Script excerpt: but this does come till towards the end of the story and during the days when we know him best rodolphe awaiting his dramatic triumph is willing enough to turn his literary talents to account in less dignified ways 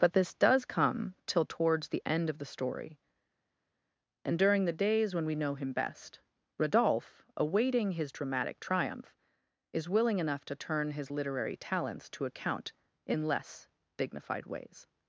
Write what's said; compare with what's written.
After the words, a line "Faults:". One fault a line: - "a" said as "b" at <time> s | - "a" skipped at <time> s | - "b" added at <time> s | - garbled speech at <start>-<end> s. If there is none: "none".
but this does come till towards the end of the story and during the days when we know him best rodolphe awaiting his dramatic triumph is willing enough to turn his literary talents to account in less dignified ways
Faults:
none